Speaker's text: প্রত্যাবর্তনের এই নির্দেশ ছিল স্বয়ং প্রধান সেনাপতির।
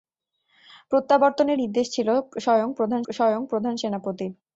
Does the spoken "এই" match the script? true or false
false